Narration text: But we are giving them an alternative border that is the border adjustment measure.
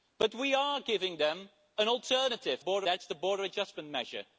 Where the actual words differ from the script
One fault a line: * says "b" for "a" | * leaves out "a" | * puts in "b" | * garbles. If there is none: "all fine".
all fine